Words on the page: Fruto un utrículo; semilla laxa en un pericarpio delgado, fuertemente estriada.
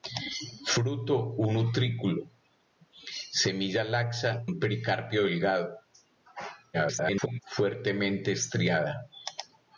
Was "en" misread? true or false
true